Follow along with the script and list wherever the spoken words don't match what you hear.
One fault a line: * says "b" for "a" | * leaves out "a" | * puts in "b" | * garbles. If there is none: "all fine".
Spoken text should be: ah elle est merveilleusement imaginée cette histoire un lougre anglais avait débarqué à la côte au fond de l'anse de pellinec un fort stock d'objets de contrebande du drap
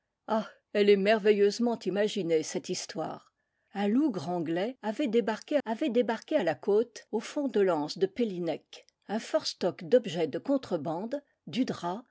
* puts in "avait débarqué"